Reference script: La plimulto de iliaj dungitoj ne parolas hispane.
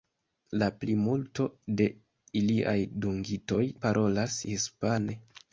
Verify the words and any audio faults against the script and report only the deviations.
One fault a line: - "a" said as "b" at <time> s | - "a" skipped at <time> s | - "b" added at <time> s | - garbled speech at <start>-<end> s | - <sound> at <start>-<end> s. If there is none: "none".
- "ne" skipped at 3.6 s